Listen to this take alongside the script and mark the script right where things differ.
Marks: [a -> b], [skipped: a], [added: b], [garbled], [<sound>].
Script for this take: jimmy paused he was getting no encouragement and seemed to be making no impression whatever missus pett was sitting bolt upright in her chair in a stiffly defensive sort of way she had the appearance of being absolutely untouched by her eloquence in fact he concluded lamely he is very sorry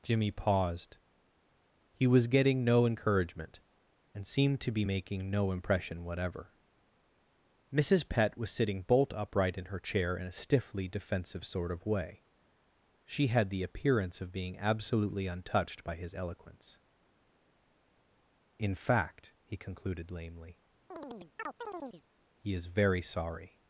jimmy paused he was getting no encouragement and seemed to be making no impression whatever missus pett was sitting bolt upright in her chair in a stiffly defensive sort of way she had the appearance of being absolutely untouched by [her -> his] eloquence in fact he concluded lamely [chirp] he is very sorry